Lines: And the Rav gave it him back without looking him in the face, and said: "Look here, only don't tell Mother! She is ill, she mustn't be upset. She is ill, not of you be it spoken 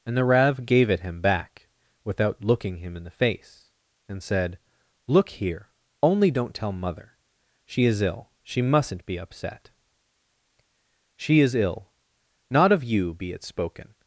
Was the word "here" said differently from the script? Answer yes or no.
no